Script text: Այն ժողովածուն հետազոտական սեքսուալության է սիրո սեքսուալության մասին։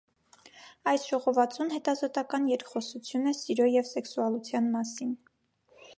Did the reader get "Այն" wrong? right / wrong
wrong